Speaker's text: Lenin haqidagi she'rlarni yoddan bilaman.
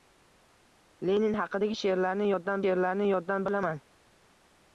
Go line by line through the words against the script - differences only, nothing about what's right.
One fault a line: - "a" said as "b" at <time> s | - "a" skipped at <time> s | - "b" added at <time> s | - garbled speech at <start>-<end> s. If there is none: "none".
- "she'rlarni yoddan" added at 2.6 s